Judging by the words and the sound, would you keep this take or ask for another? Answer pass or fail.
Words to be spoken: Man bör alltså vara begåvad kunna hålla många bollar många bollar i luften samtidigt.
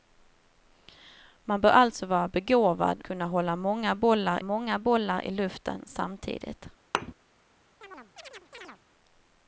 fail